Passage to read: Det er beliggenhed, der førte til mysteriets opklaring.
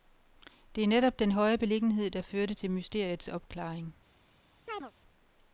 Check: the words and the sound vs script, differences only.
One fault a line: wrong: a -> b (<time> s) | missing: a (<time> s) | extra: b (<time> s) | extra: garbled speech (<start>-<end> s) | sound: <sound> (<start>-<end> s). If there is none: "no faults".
extra: netop den høje (0.9 s)
sound: chirp (4.7-4.9 s)